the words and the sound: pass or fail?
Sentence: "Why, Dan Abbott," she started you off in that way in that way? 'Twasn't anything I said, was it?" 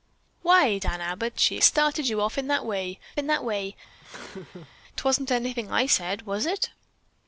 fail